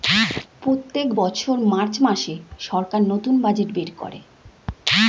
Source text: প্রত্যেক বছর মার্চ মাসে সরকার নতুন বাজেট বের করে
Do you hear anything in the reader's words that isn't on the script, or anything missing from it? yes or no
no